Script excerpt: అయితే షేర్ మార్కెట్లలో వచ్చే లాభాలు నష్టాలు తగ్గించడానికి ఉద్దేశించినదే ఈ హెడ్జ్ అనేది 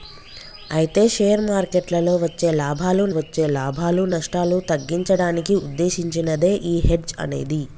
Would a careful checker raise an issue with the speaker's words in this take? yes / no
yes